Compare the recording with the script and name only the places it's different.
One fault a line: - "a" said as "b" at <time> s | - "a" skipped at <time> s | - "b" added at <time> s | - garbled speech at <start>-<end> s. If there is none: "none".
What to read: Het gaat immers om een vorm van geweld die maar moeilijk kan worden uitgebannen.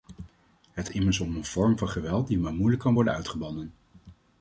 - "gaat" skipped at 0.9 s